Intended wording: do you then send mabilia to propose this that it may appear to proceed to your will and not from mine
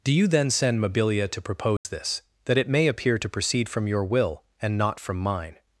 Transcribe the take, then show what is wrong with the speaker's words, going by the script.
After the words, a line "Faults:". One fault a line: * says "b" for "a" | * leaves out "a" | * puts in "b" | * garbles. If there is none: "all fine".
do you then send mabilia to propose this that it may appear to proceed from your will and not from mine
Faults:
* says "from" for "to"